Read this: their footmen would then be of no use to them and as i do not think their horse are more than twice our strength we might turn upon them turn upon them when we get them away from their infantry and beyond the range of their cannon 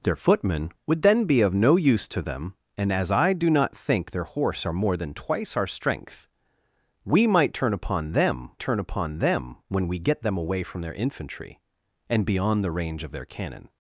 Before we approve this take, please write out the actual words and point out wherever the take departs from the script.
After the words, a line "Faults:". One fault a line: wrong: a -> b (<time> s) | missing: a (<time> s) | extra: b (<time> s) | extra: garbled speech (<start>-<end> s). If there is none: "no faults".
their footmen would then be of no use to them and as i do not think their horse are more than twice our strength we might turn upon them turn upon them when we get them away from their infantry and beyond the range of their cannon
Faults:
no faults